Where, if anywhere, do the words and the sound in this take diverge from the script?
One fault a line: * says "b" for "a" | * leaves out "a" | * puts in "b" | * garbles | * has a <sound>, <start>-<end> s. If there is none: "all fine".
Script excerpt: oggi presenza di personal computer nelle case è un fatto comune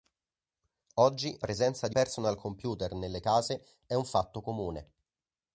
all fine